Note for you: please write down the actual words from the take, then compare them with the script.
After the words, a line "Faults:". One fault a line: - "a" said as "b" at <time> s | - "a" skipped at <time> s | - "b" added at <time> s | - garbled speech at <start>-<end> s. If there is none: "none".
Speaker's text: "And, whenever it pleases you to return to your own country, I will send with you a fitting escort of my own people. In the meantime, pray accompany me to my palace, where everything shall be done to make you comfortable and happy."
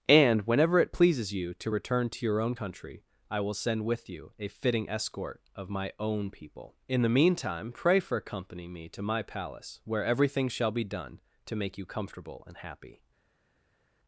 "And, whenever it pleases you to return to your own country, I will send with you a fitting escort of my own people. In the meantime, pray for accompany me to my palace, where everything shall be done to make you comfortable and happy."
Faults:
- "for" added at 8.0 s